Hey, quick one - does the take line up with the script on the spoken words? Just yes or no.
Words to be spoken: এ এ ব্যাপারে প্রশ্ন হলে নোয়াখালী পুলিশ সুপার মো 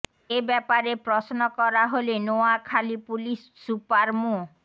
no